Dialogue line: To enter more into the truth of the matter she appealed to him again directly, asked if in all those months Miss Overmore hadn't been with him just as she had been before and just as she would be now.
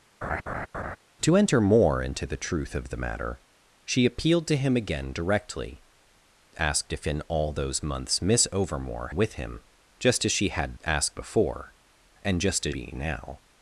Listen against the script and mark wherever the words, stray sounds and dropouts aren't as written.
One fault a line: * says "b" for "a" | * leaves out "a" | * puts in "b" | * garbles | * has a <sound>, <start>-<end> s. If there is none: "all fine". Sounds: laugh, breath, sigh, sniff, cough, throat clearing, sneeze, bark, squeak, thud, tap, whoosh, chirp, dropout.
* has a laugh, 0.2-1.0 s
* leaves out "hadn't been"
* says "asked" for "been"
* leaves out "she would"